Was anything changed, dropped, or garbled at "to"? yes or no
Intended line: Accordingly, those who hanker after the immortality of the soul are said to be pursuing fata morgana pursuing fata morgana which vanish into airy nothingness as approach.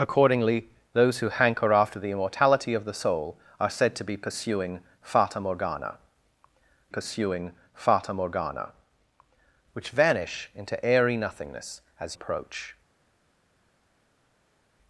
no